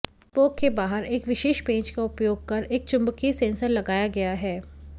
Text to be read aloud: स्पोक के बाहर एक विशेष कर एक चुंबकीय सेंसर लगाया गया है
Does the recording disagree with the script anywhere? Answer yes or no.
yes